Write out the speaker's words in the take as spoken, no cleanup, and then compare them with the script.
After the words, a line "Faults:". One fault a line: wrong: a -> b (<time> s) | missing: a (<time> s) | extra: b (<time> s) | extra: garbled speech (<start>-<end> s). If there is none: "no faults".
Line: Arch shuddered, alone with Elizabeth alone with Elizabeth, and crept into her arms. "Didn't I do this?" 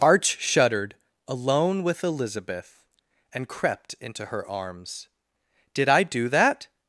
Arch shuddered, alone with Elizabeth, and crept into her arms. "Did I do that?"
Faults:
missing: alone with Elizabeth (2.9 s)
wrong: Didn't -> Did (5.7 s)
wrong: this -> that (6.3 s)